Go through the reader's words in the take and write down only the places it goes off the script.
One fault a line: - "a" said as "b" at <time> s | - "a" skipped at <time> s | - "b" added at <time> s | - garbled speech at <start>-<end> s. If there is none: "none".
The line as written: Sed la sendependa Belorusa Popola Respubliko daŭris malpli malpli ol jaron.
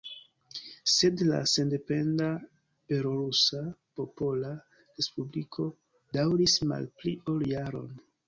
- "malpli" skipped at 7.2 s